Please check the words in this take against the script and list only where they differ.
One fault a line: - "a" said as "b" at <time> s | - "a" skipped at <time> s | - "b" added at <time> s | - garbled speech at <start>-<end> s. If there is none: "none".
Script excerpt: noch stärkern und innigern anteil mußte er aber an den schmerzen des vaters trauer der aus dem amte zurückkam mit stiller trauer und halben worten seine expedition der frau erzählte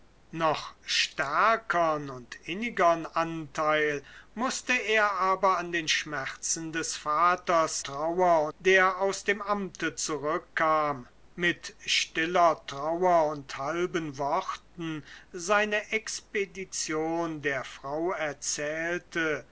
none